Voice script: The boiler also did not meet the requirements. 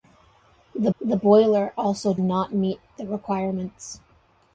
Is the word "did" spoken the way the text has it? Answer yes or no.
no